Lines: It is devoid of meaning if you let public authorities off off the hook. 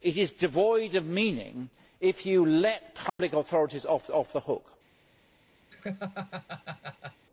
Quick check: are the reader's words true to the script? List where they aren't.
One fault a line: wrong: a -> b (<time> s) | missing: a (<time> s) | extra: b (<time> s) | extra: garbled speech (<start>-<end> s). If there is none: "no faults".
no faults